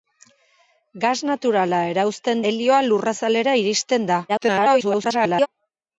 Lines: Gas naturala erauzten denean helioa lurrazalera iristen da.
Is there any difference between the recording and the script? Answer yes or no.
yes